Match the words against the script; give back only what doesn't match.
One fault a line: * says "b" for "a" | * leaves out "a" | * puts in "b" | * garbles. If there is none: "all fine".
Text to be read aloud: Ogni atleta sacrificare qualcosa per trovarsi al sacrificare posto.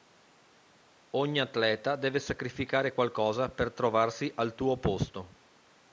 * puts in "deve"
* says "tuo" for "sacrificare"